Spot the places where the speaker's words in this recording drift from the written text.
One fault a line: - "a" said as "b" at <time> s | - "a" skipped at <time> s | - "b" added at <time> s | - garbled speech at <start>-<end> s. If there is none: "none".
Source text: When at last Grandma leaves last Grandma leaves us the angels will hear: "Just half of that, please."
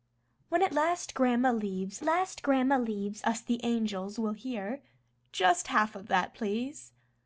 none